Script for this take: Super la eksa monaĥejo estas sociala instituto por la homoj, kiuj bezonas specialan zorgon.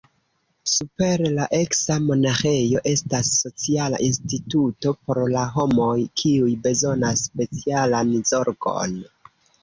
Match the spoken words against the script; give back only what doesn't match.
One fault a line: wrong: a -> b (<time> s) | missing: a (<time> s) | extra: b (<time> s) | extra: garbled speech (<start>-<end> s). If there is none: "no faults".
no faults